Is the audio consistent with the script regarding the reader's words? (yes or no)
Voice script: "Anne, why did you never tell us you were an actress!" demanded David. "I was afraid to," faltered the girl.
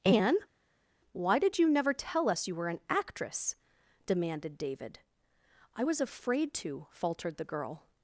yes